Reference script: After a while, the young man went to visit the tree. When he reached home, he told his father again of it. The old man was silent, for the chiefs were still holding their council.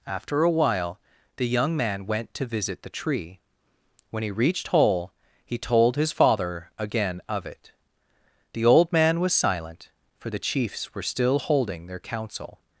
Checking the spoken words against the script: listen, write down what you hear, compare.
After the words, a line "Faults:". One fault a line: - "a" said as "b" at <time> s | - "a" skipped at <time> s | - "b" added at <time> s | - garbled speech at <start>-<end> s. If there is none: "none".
After a while, the young man went to visit the tree. When he reached hole, he told his father again of it. The old man was silent, for the chiefs were still holding their council.
Faults:
- "home" said as "hole" at 4.7 s